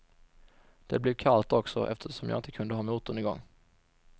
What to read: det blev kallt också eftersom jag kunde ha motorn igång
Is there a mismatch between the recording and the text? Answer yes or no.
yes